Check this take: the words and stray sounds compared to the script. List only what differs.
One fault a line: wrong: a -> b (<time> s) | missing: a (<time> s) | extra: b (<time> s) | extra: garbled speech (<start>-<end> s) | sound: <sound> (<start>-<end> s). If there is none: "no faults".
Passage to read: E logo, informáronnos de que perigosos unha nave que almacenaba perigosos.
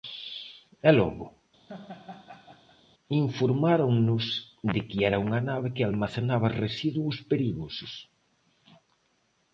sound: laugh (1.7-2.8 s)
wrong: perigosos -> era (5.1 s)
extra: residuos (6.6 s)